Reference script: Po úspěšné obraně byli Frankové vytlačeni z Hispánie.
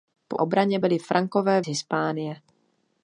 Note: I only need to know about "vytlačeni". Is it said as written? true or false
false